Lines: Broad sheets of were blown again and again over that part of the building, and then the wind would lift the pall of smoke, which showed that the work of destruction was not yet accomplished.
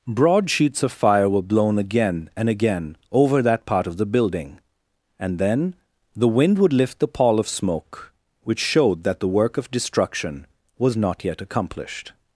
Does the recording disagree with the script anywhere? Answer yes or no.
yes